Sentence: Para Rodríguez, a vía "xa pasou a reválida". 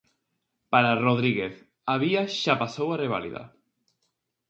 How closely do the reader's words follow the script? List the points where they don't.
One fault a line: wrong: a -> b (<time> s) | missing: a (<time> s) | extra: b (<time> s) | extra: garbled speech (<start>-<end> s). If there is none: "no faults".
no faults